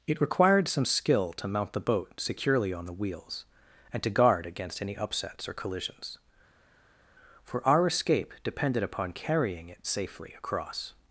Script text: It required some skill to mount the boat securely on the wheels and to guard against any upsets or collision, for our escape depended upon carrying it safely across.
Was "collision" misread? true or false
true